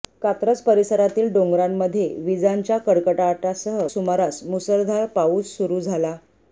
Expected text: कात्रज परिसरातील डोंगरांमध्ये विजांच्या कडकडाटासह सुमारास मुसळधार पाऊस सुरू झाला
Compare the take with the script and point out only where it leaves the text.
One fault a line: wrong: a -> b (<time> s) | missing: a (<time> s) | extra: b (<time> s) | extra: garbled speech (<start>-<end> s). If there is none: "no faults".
no faults